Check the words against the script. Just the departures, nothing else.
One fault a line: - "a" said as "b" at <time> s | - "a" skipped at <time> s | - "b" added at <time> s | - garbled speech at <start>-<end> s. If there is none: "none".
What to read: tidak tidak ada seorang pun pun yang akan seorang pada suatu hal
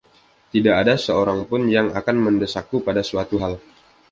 - "tidak" skipped at 0.7 s
- "pun" skipped at 1.7 s
- "seorang" said as "mendesakku" at 2.2 s